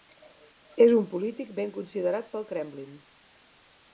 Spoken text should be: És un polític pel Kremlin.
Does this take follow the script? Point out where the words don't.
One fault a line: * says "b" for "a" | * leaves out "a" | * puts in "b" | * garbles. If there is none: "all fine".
* puts in "ben considerat"